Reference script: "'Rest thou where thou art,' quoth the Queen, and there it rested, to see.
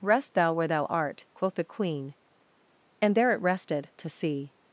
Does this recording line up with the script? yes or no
yes